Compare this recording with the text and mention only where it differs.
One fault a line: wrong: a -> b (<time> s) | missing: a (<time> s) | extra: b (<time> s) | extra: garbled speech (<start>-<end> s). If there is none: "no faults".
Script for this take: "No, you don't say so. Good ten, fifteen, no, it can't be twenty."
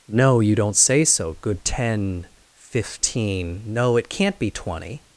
no faults